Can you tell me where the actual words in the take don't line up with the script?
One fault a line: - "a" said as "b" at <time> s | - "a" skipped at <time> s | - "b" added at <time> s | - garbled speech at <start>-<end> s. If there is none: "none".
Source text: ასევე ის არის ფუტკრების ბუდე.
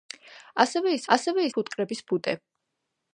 - "არის" said as "ასევე" at 1.1 s